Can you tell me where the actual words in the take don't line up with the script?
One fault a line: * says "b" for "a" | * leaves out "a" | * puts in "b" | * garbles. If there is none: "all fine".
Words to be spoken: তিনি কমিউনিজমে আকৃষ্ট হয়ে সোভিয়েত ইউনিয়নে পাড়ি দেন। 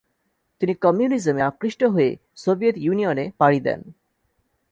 all fine